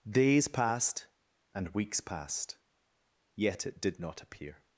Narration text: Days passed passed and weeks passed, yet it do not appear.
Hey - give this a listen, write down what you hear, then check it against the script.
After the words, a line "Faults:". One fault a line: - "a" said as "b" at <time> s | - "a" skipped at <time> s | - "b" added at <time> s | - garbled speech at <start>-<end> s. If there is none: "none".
Days passed and weeks passed, yet it did not appear.
Faults:
- "passed" skipped at 1.1 s
- "do" said as "did" at 3.8 s